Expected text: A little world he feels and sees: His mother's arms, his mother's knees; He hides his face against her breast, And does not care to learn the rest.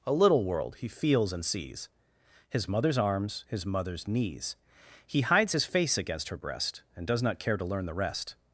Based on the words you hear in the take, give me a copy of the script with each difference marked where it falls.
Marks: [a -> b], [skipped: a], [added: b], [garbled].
A little world he feels and sees: His mother's arms, his mother's knees; He hides his face against her breast, And does not care to learn the rest.